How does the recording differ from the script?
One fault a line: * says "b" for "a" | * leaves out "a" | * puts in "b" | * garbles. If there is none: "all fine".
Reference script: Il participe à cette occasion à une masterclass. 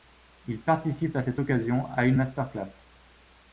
all fine